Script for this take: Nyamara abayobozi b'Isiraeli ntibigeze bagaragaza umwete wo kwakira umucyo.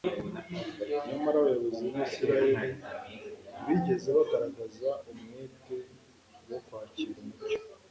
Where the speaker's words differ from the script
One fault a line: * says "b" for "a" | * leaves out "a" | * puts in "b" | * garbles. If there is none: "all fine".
all fine